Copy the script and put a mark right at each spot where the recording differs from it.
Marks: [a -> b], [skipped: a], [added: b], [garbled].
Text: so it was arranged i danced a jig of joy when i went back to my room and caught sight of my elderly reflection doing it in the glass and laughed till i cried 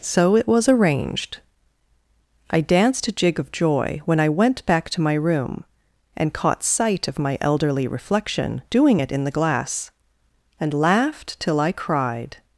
so it was arranged i danced a jig of joy when i went back to my room and caught sight of my elderly reflection doing it in the glass and laughed till i cried